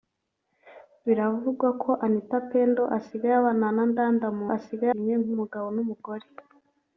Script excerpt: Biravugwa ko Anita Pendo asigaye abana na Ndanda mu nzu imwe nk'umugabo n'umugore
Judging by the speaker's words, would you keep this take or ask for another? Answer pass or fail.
fail